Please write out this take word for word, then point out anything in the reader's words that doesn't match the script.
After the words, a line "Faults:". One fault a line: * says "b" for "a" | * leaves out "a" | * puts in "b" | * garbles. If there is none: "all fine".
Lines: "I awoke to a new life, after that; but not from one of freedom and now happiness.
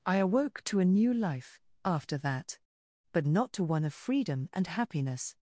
"I awoke to a new life, after that; but not to one of freedom and happiness.
Faults:
* says "to" for "from"
* leaves out "now"